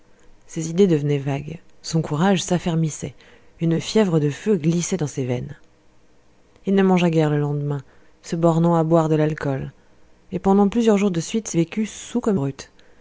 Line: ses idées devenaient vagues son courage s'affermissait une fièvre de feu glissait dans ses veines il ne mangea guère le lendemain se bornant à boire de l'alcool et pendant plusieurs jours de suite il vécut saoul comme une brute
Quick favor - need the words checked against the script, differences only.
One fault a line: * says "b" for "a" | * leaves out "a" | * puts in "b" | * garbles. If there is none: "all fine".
* leaves out "il"
* leaves out "une"